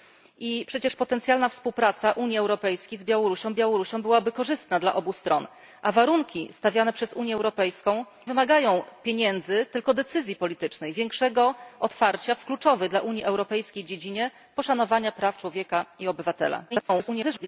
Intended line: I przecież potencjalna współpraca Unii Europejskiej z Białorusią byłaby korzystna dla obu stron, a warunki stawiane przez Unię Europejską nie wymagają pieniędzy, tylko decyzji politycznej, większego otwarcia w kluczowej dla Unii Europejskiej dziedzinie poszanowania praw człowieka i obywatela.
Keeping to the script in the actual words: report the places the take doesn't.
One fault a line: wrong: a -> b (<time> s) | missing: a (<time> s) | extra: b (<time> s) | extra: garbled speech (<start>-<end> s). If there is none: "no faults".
extra: Białorusią (3.5 s)
missing: nie (8.0 s)
extra: garbled speech (16.7-17.5 s)